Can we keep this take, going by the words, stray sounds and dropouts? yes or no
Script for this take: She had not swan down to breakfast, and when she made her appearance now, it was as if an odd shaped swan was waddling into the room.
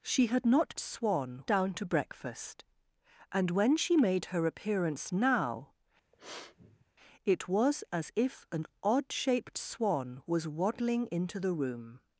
no